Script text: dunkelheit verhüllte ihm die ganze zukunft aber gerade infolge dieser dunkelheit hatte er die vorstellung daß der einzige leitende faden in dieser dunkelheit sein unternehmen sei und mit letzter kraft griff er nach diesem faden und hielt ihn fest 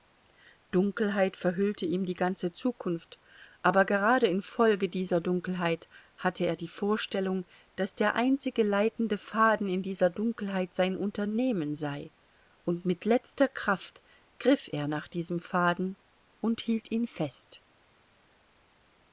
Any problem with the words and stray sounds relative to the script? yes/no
no